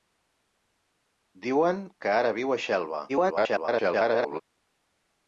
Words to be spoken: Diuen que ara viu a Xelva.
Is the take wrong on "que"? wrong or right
right